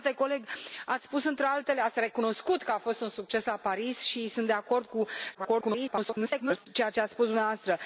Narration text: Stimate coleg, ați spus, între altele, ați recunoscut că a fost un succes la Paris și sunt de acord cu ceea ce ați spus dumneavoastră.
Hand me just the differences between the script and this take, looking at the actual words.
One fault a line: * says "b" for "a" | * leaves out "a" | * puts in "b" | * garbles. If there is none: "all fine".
* garbles